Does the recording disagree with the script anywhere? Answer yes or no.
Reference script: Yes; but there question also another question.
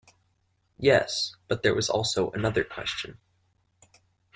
yes